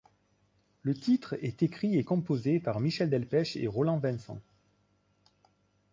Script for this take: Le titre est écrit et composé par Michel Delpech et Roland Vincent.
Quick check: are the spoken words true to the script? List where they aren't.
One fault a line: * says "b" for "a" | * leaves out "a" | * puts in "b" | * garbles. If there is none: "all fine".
all fine